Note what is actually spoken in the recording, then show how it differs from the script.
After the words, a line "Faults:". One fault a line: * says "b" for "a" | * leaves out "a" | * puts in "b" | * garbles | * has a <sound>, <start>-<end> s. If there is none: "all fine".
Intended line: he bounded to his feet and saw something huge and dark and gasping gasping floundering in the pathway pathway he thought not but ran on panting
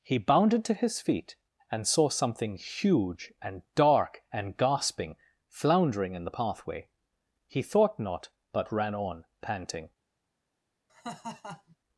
he bounded to his feet and saw something huge and dark and gasping floundering in the pathway he thought not but ran on panting
Faults:
* leaves out "gasping"
* leaves out "pathway"
* has a laugh, 10.9-11.8 s